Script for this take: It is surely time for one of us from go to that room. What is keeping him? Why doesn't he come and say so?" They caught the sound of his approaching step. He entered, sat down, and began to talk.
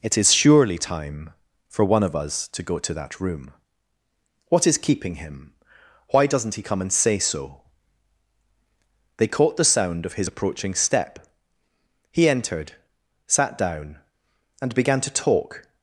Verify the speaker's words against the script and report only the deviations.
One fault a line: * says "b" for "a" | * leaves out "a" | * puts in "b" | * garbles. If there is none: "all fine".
* says "to" for "from"